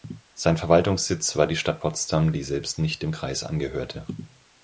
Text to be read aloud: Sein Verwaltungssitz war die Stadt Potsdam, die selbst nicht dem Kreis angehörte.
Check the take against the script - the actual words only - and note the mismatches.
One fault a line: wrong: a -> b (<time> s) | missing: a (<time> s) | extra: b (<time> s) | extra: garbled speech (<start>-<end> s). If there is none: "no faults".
no faults